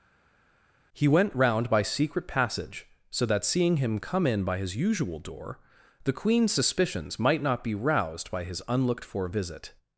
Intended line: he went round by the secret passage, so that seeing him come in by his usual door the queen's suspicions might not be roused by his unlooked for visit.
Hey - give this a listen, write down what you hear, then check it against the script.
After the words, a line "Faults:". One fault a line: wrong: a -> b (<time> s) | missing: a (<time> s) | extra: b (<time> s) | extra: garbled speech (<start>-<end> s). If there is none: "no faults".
he went round by secret passage, so that seeing him come in by his usual door the queen's suspicions might not be roused by his unlooked for visit.
Faults:
missing: the (1.8 s)